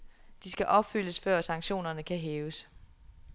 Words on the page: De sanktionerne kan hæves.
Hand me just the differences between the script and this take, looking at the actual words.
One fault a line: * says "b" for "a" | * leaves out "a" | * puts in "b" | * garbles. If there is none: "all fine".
* puts in "skal opfyldes før"